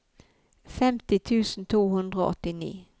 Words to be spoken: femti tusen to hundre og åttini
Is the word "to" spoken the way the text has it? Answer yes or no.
yes